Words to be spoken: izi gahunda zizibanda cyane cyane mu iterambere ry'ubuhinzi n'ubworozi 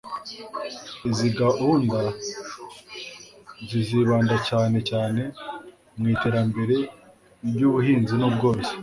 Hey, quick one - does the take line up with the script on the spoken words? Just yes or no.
yes